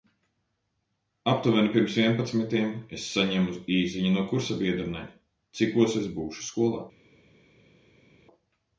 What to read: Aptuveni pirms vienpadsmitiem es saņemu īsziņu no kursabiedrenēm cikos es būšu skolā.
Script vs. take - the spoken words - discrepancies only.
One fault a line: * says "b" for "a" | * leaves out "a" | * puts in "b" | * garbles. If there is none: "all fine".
all fine